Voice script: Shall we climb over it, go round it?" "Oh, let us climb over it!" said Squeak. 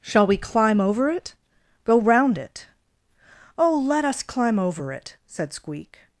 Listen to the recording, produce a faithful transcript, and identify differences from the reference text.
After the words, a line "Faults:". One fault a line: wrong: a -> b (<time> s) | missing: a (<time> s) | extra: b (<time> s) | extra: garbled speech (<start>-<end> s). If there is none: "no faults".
Shall we climb over it, go round it?" "Oh, let us climb over it!" said Squeak.
Faults:
no faults